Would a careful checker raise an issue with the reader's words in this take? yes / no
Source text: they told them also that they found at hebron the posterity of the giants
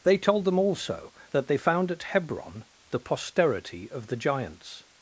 no